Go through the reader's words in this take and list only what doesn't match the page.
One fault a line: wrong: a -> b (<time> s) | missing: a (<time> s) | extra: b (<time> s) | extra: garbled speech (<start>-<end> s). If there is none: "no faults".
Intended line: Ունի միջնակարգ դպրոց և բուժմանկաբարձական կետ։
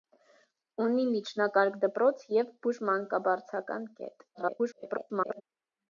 extra: garbled speech (4.3-5.4 s)